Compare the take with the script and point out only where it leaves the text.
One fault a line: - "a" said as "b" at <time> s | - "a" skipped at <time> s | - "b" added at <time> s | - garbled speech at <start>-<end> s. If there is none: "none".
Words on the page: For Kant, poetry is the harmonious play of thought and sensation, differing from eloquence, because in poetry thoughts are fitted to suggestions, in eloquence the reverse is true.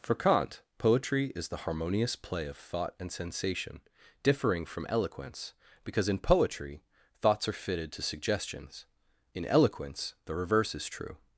none